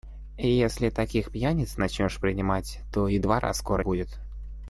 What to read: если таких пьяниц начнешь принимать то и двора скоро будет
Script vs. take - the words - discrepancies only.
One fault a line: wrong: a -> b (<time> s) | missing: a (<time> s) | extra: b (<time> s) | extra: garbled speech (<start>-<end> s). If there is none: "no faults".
no faults